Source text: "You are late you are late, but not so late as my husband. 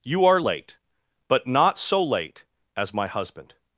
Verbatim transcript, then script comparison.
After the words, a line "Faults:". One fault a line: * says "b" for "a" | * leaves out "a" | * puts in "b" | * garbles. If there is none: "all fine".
"You are late, but not so late as my husband.
Faults:
* leaves out "you are late"